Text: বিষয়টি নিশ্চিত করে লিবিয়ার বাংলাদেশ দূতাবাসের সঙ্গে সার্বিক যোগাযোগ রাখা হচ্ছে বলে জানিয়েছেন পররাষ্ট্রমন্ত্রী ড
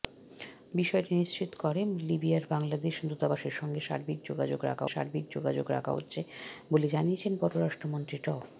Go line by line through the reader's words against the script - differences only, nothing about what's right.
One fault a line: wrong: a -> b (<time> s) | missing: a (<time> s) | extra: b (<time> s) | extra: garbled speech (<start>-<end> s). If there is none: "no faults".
extra: সার্বিক যোগাযোগ রাখা (4.9 s)